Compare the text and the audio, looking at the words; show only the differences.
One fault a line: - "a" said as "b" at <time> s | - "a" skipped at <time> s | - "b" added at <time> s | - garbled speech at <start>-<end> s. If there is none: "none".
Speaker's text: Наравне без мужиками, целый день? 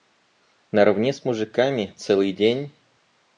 - "без" said as "с" at 1.1 s